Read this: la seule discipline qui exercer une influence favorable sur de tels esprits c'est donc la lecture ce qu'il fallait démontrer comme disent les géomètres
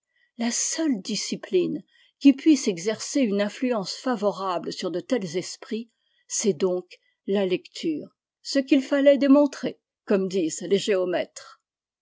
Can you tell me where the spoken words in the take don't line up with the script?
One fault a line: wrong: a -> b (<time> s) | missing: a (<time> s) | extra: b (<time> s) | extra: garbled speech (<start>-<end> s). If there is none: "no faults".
extra: puisse (2.3 s)